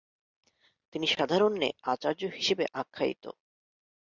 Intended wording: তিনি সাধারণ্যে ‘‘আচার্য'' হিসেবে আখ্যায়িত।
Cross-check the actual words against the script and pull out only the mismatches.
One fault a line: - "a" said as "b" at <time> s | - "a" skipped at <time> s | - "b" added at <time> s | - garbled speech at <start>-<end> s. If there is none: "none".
none